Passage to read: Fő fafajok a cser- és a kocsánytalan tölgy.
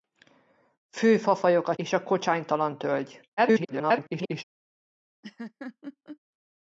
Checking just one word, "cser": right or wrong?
wrong